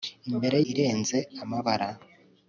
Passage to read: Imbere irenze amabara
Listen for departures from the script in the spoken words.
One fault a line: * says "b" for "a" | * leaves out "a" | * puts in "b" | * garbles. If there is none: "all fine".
all fine